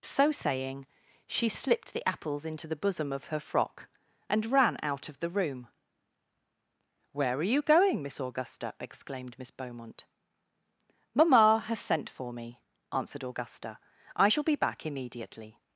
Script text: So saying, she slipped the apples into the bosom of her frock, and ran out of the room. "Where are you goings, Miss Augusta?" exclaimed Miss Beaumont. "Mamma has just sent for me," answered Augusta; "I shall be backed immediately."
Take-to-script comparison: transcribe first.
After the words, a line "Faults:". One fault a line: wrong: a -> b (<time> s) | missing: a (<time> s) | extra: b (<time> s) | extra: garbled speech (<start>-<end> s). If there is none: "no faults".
So saying, she slipped the apples into the bosom of her frock, and ran out of the room. "Where are you going, Miss Augusta?" exclaimed Miss Beaumont. "Mamma has sent for me," answered Augusta; "I shall be back immediately."
Faults:
wrong: goings -> going (7.6 s)
missing: just (11.8 s)
wrong: backed -> back (14.5 s)